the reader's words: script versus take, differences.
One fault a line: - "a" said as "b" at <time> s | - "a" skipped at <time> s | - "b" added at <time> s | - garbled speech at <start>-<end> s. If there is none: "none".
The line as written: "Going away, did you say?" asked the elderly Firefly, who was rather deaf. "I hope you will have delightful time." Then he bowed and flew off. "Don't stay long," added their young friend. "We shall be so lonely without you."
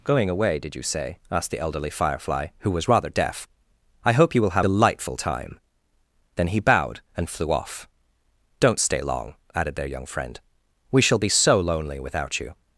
none